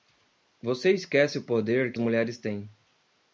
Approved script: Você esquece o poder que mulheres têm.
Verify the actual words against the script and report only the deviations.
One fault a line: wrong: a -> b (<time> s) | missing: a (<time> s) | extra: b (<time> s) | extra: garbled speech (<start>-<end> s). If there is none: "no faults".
no faults